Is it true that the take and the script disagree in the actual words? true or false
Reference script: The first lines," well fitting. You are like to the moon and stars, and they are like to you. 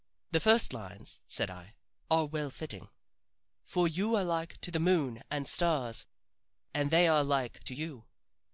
true